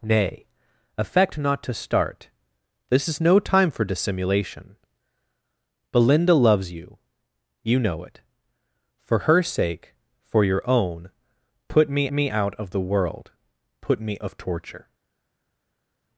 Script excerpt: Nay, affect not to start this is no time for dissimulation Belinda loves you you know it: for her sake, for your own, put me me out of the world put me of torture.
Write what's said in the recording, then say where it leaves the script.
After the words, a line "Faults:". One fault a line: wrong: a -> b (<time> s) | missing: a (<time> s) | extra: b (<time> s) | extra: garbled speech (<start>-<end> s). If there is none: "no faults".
Nay, affect not to start this is no time for dissimulation Belinda loves you you know it: for her sake, for your own, put me me out of the world put me of torture.
Faults:
no faults